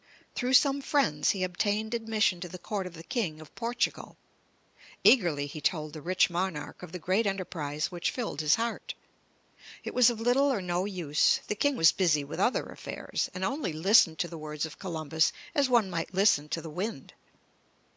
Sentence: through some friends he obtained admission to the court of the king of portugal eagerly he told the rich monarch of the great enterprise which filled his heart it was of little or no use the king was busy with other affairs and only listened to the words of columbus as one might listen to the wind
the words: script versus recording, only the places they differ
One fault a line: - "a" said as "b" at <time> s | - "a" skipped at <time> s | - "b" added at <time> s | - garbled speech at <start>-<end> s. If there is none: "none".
none